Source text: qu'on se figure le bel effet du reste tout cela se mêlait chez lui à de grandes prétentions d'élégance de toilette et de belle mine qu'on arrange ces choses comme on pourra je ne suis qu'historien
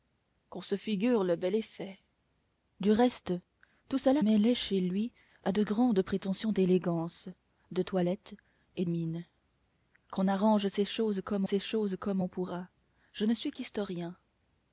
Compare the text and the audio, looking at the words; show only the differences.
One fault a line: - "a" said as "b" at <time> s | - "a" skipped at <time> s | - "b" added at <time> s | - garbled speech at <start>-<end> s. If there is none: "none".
- "se" skipped at 4.2 s
- "de belle" skipped at 8.8 s
- "ces choses comme" added at 11.4 s